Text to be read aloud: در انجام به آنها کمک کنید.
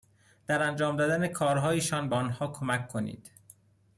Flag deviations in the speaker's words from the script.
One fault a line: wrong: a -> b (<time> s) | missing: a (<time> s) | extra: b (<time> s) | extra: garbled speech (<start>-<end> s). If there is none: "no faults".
extra: دادن کارهایشان (1.0 s)